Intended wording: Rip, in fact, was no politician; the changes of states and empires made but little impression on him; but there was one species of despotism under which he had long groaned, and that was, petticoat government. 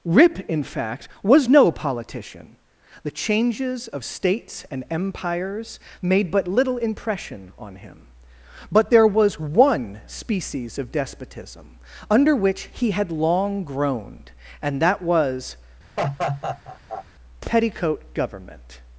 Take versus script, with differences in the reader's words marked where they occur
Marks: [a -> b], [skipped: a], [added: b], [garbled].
Rip, in fact, was no politician; the changes of states and empires made but little impression on him; but there was one species of despotism under which he had long groaned, and that was, petticoat government.